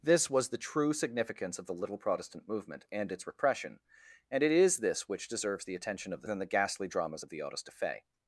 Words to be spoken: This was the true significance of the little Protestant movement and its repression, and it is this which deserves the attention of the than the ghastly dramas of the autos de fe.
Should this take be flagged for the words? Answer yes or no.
no